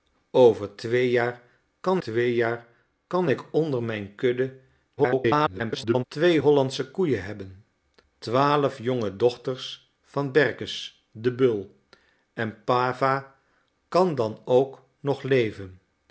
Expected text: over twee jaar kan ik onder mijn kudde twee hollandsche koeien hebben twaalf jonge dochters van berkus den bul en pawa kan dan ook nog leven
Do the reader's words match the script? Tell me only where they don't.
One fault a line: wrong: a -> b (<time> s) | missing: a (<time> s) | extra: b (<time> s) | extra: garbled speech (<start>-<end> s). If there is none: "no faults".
extra: twee jaar kan (2.0 s)
extra: garbled speech (5.0-6.0 s)